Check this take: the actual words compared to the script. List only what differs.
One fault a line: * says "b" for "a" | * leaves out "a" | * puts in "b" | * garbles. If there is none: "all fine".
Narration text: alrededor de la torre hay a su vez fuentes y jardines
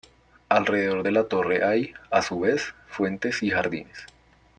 all fine